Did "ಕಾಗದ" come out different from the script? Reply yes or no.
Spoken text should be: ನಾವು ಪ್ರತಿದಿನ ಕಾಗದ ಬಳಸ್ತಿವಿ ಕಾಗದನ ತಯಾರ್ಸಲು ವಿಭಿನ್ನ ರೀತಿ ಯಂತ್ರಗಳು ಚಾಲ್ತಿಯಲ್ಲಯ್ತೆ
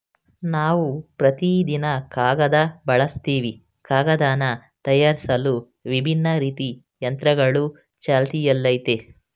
no